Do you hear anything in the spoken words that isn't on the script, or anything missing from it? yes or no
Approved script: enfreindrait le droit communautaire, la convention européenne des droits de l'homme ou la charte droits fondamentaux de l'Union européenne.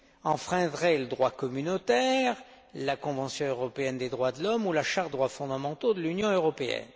no